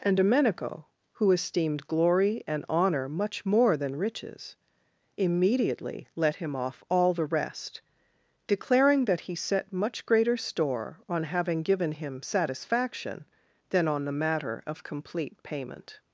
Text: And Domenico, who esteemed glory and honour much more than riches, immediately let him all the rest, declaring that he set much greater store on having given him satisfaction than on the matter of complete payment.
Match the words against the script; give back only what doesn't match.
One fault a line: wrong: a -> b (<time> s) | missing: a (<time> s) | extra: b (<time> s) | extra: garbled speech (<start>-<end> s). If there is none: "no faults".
extra: off (6.6 s)